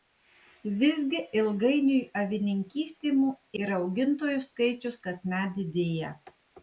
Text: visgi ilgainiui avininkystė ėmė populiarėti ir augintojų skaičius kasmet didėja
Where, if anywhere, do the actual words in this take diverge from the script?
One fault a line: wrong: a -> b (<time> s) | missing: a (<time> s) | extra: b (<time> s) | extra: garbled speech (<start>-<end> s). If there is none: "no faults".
missing: ėmė populiarėti (3.1 s)